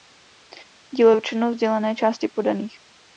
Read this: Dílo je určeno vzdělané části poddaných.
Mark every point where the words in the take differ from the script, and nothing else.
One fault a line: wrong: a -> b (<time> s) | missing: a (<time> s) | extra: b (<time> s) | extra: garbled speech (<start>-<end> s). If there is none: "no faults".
no faults